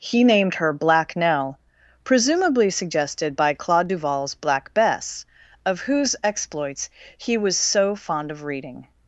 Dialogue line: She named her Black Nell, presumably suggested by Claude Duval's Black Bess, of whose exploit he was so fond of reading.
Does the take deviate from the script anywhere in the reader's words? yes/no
yes